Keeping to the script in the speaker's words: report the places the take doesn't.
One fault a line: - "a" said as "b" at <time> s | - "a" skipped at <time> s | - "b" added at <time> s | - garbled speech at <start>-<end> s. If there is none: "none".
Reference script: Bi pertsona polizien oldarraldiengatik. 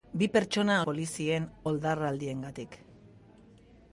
none